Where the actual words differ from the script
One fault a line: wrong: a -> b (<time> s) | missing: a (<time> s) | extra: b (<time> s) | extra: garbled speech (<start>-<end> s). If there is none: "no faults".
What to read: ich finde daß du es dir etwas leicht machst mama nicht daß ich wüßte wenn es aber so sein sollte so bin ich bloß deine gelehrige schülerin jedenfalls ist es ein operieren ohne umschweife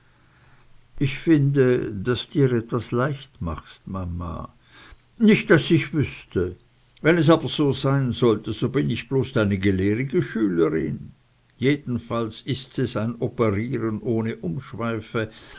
missing: du es (2.3 s)